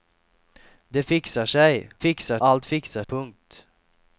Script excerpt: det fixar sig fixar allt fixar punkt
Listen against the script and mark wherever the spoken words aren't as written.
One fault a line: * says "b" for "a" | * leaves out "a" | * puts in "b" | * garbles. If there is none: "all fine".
all fine